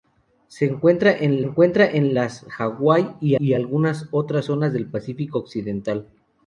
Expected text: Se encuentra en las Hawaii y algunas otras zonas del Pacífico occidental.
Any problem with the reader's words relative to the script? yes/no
yes